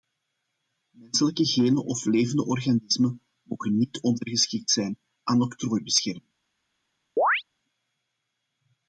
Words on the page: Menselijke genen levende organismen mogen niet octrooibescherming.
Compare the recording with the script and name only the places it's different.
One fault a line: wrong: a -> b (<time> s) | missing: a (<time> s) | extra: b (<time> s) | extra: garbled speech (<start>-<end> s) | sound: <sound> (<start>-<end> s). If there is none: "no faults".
extra: of (1.9 s)
extra: ondergeschikt zijn aan (4.0 s)
sound: chirp (7.2-7.4 s)